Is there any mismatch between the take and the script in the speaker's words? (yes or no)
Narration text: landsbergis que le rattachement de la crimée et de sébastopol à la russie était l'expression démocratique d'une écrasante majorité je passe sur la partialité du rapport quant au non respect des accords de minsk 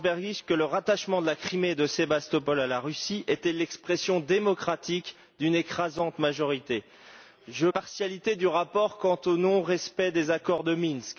yes